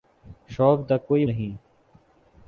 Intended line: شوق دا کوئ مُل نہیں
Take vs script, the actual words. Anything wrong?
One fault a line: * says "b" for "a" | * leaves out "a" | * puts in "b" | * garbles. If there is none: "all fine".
* leaves out "مُل"